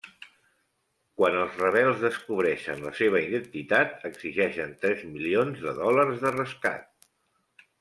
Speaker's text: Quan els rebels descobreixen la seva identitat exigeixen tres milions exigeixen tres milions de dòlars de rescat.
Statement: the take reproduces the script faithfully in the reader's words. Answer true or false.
false